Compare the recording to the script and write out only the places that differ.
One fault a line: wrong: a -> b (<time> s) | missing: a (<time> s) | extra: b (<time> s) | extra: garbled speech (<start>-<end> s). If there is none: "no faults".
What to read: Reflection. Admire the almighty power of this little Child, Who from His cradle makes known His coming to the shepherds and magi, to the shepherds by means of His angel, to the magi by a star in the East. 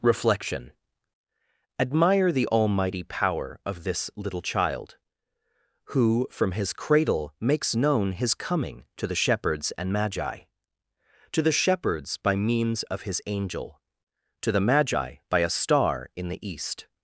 no faults